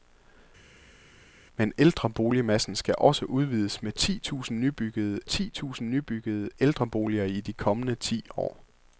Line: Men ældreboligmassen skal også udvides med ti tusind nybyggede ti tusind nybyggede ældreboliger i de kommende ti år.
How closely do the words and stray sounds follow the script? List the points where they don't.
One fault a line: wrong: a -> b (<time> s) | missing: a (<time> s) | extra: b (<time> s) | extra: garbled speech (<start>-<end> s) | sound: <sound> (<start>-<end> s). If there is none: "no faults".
no faults